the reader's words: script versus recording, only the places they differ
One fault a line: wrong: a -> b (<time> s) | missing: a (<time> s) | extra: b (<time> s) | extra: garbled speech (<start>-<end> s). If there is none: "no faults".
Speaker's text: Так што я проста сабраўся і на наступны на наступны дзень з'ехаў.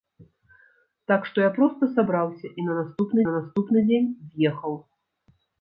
no faults